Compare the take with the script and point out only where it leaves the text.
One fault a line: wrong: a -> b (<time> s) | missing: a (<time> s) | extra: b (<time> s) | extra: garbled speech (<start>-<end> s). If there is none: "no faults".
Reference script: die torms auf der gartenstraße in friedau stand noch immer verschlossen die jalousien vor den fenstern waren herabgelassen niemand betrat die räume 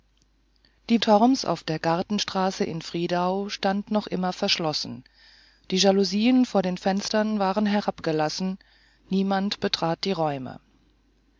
no faults